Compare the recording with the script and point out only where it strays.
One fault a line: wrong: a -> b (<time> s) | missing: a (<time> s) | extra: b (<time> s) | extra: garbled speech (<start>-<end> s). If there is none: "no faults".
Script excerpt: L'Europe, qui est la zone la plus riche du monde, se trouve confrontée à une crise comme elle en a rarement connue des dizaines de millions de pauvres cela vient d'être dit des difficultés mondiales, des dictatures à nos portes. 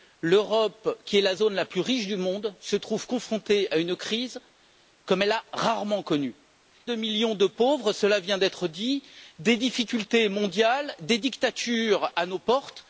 missing: des dizaines (6.3 s)